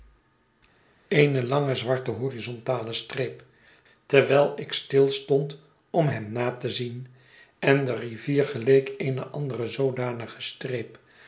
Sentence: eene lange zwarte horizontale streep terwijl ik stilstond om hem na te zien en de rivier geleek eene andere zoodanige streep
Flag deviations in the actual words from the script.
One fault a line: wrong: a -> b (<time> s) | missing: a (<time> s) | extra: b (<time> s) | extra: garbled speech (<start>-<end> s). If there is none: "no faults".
no faults